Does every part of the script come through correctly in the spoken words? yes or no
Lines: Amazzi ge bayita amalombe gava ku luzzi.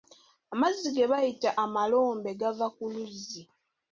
yes